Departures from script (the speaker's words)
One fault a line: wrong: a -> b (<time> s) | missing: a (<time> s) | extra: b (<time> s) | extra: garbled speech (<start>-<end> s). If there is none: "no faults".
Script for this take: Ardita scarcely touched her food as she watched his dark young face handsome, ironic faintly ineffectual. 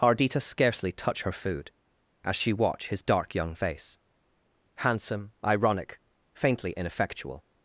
wrong: touched -> touch (0.9 s)
wrong: watched -> watch (2.5 s)